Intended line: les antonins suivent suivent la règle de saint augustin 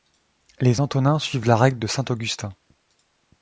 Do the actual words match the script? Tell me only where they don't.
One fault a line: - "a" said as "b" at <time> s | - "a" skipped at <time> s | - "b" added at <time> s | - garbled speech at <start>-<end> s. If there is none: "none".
- "suivent" skipped at 1.4 s